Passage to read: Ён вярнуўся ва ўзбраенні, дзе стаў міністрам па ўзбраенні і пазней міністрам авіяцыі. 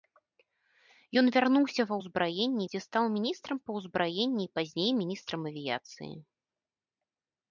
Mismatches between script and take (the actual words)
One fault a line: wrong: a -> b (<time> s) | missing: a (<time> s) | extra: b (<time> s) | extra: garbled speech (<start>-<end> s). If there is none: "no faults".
no faults